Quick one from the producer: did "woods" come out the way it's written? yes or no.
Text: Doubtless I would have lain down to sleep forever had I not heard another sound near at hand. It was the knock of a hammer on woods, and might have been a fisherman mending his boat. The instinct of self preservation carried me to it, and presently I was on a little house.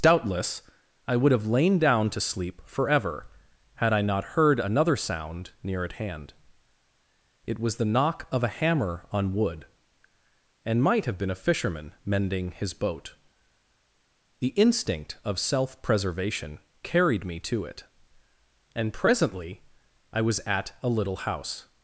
no